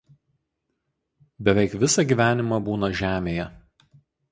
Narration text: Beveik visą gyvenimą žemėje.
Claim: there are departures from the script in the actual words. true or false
true